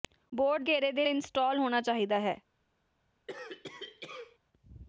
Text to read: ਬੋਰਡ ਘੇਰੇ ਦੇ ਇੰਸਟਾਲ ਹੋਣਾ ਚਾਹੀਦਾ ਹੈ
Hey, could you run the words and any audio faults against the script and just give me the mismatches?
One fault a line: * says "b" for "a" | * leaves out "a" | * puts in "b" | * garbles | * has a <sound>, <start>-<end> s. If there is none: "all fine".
* has a cough, 3.3-4.4 s